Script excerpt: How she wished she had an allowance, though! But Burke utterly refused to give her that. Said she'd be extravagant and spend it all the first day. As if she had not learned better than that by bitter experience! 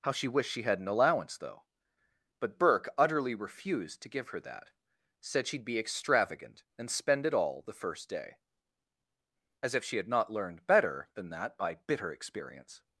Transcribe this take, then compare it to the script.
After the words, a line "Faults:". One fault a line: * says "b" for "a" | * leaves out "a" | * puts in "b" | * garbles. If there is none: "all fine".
How she wished she had an allowance, though! But Burke utterly refused to give her that. Said she'd be extravagant and spend it all the first day. As if she had not learned better than that by bitter experience!
Faults:
all fine